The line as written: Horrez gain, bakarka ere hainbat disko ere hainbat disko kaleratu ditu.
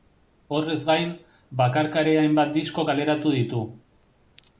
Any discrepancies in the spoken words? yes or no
yes